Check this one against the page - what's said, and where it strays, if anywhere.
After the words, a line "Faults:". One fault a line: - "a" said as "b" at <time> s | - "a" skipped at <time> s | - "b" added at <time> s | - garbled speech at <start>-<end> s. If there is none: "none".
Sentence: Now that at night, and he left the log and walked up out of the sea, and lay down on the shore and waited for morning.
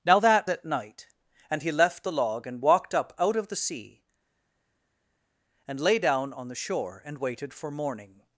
Now that at night, and he left the log and walked up out of the sea, and lay down on the shore and waited for morning.
Faults:
none